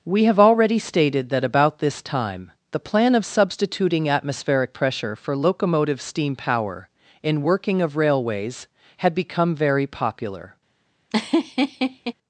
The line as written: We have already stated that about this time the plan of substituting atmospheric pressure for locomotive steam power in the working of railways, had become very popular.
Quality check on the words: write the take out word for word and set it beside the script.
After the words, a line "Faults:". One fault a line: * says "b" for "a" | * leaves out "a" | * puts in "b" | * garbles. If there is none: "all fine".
We have already stated that about this time the plan of substituting atmospheric pressure for locomotive steam power in working of railways, had become very popular.
Faults:
* leaves out "the"